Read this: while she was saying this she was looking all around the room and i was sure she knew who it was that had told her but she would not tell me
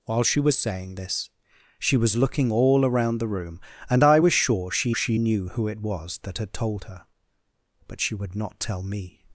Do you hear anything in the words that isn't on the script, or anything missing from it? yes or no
yes